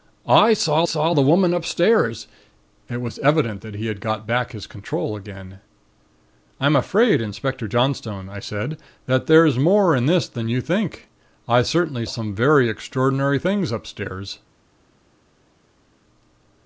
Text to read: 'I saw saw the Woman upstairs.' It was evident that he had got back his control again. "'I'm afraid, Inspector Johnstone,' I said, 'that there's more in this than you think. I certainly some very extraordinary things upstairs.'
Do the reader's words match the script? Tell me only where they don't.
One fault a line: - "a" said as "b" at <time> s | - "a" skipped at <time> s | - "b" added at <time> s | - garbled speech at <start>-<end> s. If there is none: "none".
none